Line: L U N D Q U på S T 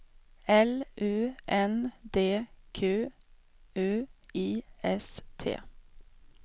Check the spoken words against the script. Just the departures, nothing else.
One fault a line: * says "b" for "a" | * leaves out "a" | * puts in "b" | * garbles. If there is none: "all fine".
* says "I" for "på"